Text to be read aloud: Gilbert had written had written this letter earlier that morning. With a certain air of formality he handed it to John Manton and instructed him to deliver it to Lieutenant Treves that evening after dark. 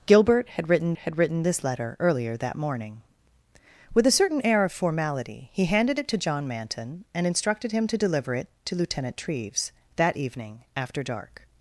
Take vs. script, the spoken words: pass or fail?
pass